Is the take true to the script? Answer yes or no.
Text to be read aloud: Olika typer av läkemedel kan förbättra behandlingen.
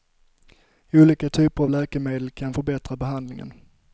yes